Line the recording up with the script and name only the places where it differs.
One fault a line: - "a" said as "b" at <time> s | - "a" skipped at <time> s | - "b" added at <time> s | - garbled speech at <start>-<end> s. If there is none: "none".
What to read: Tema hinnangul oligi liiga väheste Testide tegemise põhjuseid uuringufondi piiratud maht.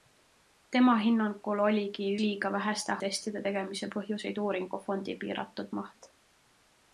none